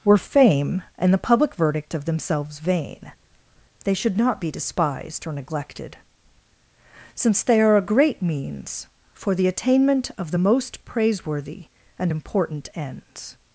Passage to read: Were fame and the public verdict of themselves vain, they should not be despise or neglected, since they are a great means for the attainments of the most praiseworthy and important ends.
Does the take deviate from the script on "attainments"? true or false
true